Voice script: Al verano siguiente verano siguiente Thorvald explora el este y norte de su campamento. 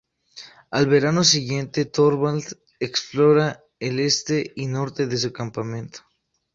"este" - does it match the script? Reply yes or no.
yes